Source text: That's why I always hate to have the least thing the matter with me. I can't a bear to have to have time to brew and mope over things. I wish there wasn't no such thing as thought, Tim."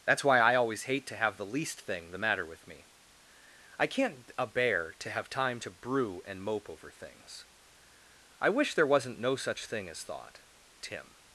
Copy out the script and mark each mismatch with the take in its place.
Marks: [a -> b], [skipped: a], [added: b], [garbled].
That's why I always hate to have the least thing the matter with me. I can't a bear to have [skipped: to have] time to brew and mope over things. I wish there wasn't no such thing as thought, Tim."